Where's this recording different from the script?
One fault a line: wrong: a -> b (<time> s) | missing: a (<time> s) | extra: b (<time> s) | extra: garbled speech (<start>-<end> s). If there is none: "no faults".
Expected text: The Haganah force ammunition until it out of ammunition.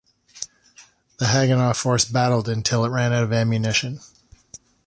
wrong: ammunition -> battled (2.0 s)
extra: ran (2.9 s)